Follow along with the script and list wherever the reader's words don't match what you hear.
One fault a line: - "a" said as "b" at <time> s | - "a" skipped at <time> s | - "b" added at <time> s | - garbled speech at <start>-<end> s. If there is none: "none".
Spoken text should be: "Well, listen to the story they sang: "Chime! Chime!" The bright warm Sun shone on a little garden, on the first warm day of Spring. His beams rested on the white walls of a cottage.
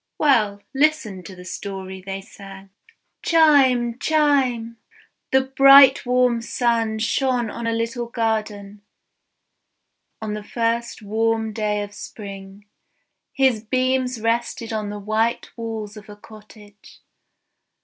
none